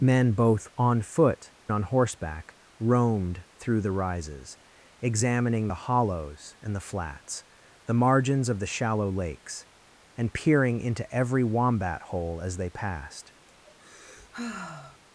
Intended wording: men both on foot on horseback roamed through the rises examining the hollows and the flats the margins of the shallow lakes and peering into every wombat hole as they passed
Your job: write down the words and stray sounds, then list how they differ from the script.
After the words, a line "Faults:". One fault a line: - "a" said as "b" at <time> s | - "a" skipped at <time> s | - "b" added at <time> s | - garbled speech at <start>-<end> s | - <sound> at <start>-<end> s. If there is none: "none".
men both on foot on horseback roamed through the rises examining the hollows and the flats the margins of the shallow lakes and peering into every wombat hole as they passed
Faults:
- sigh at 13.5-15.0 s